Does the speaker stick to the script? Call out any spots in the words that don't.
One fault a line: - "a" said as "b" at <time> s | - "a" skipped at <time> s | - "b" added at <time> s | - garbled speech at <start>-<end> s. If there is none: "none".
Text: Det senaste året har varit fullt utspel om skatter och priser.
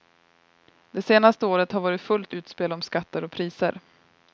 none